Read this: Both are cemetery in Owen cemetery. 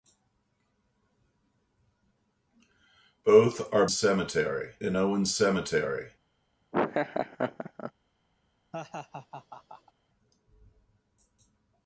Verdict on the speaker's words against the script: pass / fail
pass